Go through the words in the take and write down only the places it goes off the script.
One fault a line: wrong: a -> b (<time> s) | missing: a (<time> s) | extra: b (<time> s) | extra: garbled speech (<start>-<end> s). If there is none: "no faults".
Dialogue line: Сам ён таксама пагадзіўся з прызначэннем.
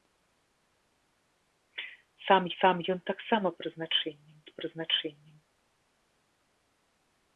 extra: сам (2.6 s)
wrong: пагадзіўся -> прызначэннем (3.6 s)